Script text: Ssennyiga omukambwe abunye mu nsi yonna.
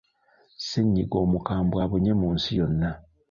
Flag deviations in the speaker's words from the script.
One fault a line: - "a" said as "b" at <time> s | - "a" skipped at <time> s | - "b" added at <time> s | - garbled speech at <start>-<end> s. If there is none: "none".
none